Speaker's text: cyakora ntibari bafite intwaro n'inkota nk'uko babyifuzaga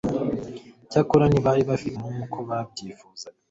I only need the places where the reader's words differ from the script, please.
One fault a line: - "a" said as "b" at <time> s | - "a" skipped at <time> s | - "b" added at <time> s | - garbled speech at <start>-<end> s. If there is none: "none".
- "intwaro n'inkota" skipped at 2.0 s